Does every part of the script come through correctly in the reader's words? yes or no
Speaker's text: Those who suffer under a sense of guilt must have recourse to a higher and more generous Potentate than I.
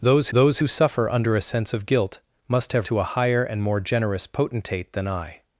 no